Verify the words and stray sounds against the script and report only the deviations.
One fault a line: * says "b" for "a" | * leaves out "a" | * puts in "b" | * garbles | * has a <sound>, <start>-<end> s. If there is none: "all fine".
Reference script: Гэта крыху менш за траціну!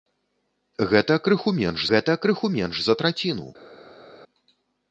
* puts in "гэта крыху менш"